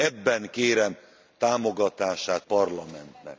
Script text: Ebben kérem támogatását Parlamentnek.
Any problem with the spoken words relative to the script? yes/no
no